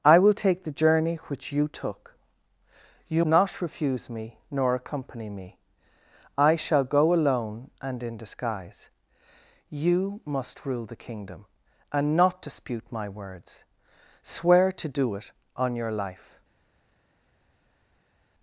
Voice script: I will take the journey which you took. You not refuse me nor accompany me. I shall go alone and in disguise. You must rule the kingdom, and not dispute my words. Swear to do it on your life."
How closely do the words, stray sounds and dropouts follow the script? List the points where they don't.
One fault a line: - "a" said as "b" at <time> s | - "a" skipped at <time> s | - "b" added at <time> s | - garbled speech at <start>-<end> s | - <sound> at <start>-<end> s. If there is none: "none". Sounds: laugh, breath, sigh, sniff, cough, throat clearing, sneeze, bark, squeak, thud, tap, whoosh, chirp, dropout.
none